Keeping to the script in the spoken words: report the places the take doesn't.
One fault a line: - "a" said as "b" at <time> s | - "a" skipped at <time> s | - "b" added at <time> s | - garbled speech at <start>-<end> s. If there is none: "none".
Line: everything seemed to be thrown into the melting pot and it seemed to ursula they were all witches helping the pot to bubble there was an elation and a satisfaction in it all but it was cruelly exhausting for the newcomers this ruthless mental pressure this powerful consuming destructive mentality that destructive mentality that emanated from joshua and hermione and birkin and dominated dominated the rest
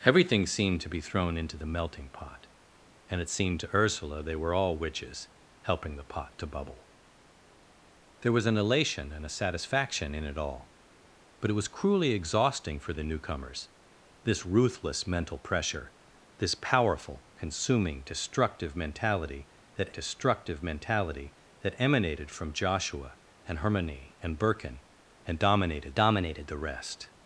none